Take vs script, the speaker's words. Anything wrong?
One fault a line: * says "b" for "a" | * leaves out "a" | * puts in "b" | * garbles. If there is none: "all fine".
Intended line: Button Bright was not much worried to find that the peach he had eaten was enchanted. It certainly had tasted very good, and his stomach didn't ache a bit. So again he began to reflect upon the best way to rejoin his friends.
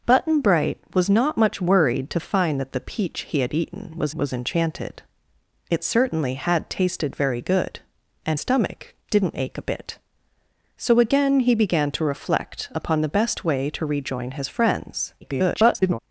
* puts in "was"
* leaves out "his"
* garbles